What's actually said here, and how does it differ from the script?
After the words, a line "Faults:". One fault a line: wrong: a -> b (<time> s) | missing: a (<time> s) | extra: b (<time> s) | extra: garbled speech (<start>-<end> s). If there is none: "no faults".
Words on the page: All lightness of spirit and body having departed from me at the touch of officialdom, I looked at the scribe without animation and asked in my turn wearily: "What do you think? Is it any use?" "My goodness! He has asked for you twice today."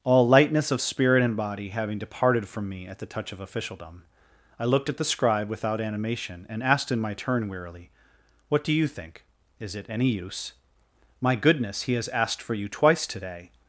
All lightness of spirit and body having departed from me at the touch of officialdom, I looked at the scribe without animation and asked in my turn wearily: "What do you think? Is it any use?" "My goodness! He has asked for you twice today."
Faults:
no faults